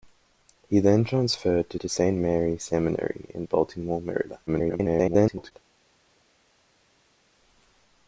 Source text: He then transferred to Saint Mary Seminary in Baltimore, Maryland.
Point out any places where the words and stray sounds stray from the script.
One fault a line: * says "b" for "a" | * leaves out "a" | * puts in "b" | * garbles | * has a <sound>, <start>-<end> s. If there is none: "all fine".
* puts in "to"
* garbles